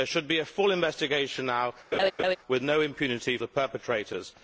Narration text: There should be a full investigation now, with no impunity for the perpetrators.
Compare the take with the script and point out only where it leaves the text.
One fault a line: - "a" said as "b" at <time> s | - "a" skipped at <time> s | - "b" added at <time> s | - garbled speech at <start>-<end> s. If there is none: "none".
- "for" skipped at 3.4 s